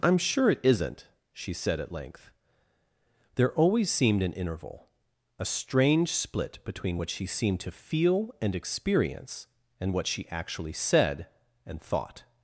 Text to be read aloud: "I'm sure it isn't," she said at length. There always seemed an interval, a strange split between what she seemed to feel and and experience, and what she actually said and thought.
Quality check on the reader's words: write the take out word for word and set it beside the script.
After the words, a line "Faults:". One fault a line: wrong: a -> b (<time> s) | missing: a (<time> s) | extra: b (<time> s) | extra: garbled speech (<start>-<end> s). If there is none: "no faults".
"I'm sure it isn't," she said at length. There always seemed an interval, a strange split between what she seemed to feel and experience, and what she actually said and thought.
Faults:
missing: and (8.6 s)